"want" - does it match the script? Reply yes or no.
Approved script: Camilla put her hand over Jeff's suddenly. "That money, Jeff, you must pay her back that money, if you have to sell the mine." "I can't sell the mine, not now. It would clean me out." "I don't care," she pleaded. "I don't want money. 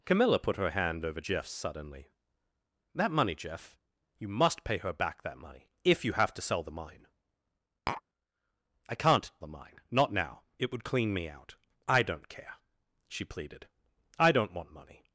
yes